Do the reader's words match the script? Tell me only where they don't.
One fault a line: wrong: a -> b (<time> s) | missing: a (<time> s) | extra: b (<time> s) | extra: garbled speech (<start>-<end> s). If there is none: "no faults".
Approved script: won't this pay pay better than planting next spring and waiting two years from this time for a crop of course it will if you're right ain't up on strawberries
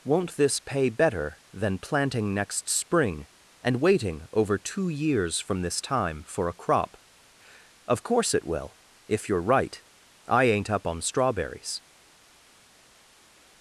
missing: pay (0.9 s)
extra: over (4.3 s)
extra: i (10.3 s)